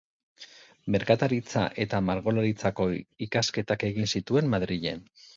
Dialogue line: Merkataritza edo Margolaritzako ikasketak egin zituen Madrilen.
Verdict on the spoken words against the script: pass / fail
fail